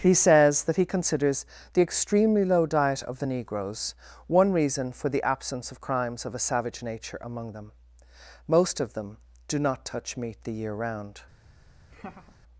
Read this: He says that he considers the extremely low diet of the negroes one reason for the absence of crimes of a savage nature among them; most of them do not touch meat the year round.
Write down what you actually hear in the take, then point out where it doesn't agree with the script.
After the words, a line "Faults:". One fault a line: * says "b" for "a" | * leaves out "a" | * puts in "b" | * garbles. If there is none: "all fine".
He says that he considers the extremely low diet of the negroes one reason for the absence of crimes of a savage nature among them; most of them do not touch meat the year round.
Faults:
all fine